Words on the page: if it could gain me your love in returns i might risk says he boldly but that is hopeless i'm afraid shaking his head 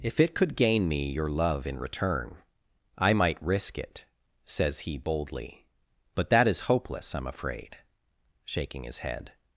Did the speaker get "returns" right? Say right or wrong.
wrong